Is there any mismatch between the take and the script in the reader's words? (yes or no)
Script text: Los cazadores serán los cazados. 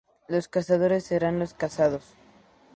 no